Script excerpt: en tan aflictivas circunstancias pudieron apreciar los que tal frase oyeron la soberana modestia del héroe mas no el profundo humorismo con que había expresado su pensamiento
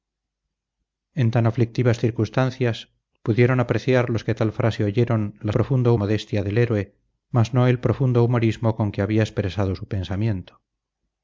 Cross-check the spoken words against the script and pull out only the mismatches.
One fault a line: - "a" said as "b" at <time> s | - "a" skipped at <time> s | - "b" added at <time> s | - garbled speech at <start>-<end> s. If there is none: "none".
- "soberana" said as "profundo" at 5.5 s